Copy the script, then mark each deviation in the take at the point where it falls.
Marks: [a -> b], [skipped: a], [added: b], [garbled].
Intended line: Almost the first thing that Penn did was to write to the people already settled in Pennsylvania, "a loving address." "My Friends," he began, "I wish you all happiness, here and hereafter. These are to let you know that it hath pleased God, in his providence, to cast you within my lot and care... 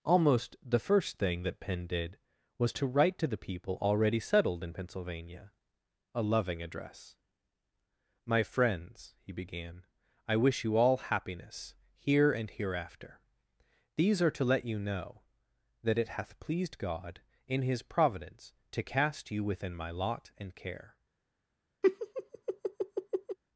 Almost the first thing that Penn did was to write to the people already settled in Pennsylvania, "a loving address." "My Friends," he began, "I wish you all happiness, here and hereafter. These are to let you know that it hath pleased God, in his providence, to cast you within my lot and care...